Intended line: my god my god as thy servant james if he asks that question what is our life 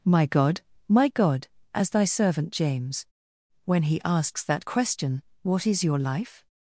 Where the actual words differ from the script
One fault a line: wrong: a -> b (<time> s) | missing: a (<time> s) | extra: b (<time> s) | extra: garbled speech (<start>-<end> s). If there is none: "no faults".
wrong: if -> when (3.6 s)
wrong: our -> your (5.8 s)